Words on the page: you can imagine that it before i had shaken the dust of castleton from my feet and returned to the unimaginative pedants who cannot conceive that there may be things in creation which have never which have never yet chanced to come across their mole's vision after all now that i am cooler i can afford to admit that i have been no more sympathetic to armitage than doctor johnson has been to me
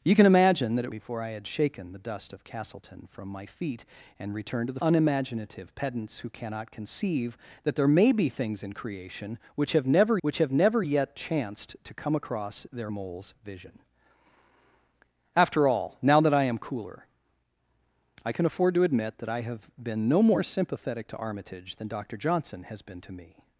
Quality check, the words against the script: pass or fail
pass